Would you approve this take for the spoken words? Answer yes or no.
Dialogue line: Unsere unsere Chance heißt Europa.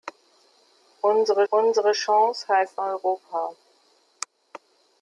yes